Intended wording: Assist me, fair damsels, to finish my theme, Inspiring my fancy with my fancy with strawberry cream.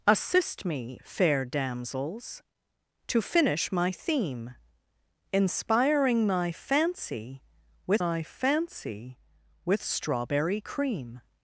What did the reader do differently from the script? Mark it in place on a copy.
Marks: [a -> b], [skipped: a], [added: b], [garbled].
Assist me, fair damsels, to finish my theme, Inspiring my fancy with my fancy with strawberry cream.